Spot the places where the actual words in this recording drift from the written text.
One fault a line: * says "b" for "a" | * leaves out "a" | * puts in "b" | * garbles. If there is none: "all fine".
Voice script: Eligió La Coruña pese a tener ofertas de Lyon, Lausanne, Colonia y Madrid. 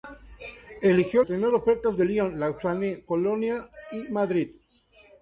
* leaves out "La Coruña pese"